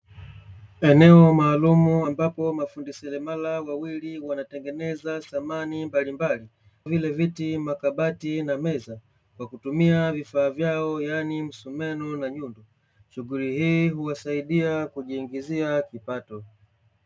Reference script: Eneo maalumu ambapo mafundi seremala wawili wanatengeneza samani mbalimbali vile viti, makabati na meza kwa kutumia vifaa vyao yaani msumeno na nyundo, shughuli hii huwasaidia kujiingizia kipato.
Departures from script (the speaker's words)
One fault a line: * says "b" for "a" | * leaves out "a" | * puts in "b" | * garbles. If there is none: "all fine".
all fine